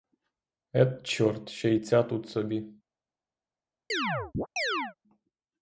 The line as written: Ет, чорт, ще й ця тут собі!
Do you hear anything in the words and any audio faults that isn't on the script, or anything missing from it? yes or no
yes